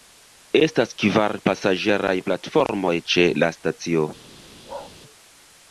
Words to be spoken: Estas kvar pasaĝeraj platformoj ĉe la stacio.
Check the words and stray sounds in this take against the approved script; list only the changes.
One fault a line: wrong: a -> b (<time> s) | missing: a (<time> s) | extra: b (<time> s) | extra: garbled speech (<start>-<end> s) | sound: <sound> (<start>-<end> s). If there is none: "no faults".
sound: bark (4.7-4.9 s)